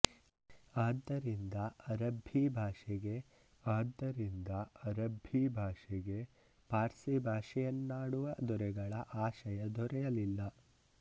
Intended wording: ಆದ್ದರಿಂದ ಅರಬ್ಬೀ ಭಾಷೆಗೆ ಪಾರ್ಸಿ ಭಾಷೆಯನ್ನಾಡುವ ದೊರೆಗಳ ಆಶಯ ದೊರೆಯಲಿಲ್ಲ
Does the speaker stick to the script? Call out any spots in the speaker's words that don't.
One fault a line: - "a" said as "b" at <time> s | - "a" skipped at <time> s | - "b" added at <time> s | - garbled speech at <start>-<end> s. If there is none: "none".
- "ಆದ್ದರಿಂದ ಅರಬ್ಬೀ ಭಾಷೆಗೆ" added at 3.6 s